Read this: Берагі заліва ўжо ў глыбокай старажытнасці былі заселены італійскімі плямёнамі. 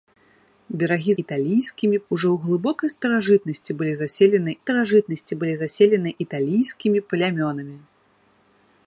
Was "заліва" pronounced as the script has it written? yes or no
no